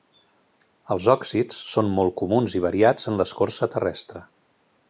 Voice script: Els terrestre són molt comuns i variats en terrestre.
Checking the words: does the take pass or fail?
fail